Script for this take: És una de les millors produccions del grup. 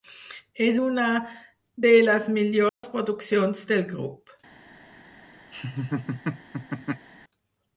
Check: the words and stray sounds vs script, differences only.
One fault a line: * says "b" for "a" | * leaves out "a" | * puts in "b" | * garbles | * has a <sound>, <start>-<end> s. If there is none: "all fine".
* has a dropout, 2.7-2.8 s
* has a laugh, 5.5-7.1 s